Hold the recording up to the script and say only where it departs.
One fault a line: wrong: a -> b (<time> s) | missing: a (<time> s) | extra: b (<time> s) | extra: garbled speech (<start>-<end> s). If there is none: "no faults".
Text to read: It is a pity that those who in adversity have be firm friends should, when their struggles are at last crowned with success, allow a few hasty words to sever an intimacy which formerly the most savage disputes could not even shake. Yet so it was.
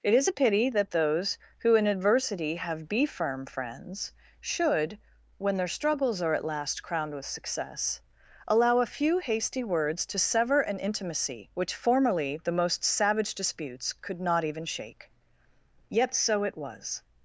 no faults